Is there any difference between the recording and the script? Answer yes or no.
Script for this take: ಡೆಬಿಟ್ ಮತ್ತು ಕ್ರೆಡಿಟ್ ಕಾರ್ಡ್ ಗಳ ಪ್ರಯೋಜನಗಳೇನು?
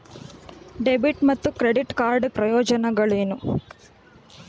yes